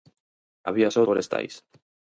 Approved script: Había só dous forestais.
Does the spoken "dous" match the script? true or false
false